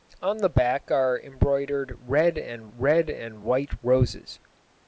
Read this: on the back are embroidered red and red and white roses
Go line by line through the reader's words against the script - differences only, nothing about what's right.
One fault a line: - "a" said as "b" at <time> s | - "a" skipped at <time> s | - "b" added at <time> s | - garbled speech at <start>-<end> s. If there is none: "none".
none